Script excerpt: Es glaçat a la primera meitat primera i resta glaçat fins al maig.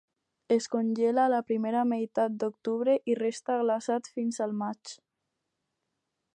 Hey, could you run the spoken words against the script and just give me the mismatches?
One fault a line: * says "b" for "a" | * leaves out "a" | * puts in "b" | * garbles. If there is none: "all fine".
* says "congela" for "glaçat"
* says "d'octubre" for "primera"